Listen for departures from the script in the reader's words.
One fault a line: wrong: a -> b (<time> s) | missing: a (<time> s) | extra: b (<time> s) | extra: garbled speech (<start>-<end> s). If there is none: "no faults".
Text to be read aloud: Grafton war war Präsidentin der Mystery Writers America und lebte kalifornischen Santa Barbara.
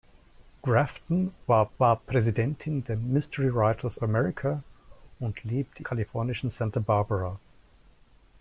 no faults